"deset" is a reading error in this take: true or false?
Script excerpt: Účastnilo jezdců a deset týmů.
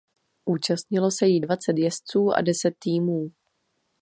false